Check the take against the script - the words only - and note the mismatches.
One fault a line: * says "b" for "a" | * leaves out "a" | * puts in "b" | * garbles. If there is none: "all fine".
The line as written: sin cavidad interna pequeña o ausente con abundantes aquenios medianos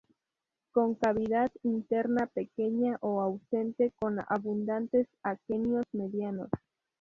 * says "con" for "sin"